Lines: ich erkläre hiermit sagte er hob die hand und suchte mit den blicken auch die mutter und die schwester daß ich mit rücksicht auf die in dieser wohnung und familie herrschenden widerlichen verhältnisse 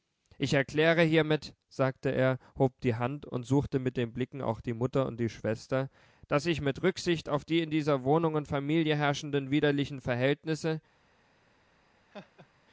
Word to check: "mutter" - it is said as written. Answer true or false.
true